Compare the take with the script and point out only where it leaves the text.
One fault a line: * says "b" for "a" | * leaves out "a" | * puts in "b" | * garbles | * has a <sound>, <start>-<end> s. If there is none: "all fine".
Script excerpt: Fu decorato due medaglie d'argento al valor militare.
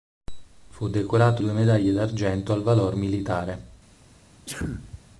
* has a sneeze, 4.5-5.0 s